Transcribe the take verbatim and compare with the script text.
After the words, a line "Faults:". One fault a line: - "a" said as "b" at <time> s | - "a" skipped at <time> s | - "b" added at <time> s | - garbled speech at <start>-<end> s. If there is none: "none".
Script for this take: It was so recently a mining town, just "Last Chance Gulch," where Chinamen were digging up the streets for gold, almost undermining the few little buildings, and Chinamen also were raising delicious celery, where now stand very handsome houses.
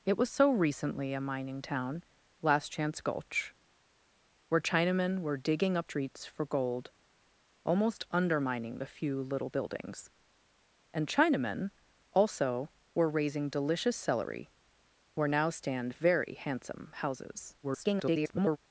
It was so recently a mining town, "Last Chance Gulch," where Chinamen were digging up streets for gold, almost undermining the few little buildings, and Chinamen also were raising delicious celery, where now stand very handsome houses. [garbled]
Faults:
- "just" skipped at 2.0 s
- "the" skipped at 5.9 s
- garbled speech at 17.6-18.6 s